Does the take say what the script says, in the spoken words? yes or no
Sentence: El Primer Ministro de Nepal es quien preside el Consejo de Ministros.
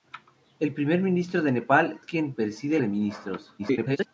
no